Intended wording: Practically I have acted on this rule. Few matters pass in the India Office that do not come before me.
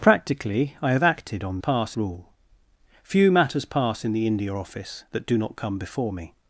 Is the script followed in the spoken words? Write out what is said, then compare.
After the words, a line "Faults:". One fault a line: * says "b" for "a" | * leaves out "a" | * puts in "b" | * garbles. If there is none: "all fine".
Practically I have acted on pass rule. Few matters pass in the India Office that do not come before me.
Faults:
* says "pass" for "this"